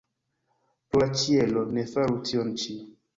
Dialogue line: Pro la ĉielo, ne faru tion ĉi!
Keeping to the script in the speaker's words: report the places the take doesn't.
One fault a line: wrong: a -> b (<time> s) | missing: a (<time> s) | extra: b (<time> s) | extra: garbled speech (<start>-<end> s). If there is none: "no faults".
no faults